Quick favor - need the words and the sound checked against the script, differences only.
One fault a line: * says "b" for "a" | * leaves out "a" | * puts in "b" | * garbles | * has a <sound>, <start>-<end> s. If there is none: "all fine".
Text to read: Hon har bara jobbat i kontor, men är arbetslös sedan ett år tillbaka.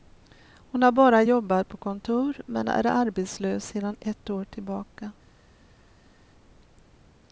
* says "på" for "i"